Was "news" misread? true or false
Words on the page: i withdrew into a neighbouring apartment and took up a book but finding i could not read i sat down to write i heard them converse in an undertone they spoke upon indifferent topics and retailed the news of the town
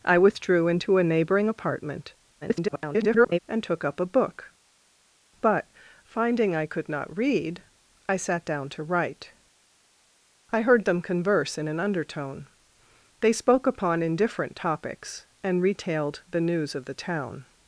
false